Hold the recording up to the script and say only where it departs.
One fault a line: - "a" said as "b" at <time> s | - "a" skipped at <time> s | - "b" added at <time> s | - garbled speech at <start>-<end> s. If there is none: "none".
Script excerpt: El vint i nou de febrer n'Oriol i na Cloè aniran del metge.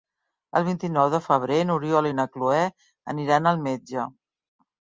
- "del" said as "al" at 3.5 s